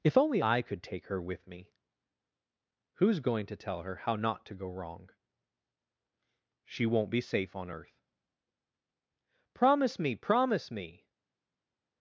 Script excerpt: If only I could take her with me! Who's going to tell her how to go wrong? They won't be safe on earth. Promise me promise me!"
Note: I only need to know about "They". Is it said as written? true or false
false